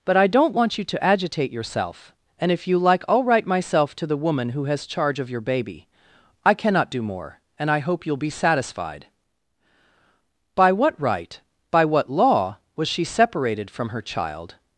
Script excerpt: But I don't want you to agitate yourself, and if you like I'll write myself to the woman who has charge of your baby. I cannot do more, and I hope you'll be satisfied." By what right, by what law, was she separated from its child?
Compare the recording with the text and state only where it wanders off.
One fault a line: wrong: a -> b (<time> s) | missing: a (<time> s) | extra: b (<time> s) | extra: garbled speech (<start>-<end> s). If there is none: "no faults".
wrong: its -> her (13.9 s)